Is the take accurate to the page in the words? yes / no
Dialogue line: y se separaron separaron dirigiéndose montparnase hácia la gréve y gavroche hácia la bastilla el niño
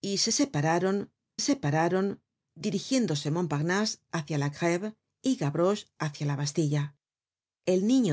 yes